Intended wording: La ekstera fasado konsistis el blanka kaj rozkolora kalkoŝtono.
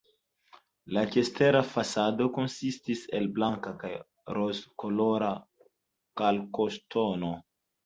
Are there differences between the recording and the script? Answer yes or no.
no